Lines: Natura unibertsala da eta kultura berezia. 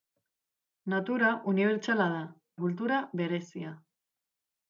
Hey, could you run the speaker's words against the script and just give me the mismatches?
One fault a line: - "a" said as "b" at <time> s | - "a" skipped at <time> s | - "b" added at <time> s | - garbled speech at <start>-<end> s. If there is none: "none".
- "eta" skipped at 2.2 s